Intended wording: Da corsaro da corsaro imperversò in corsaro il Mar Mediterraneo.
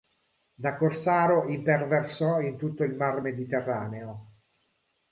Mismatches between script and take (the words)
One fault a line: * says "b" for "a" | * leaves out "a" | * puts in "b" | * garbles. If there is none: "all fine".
* leaves out "da corsaro"
* says "tutto" for "corsaro"